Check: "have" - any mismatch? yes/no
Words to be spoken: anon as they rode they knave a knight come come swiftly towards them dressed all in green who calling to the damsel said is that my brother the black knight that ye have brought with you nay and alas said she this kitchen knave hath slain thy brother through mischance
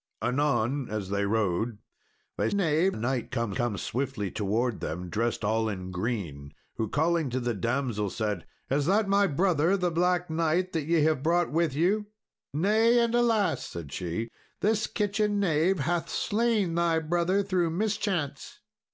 no